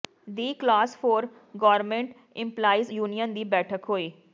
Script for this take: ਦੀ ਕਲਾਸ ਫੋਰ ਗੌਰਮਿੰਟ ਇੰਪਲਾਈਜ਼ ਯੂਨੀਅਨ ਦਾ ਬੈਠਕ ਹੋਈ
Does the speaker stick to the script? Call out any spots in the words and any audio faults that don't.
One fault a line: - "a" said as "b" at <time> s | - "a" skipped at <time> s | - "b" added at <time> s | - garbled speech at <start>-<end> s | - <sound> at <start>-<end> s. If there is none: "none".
- "ਦਾ" said as "ਦੀ" at 3.3 s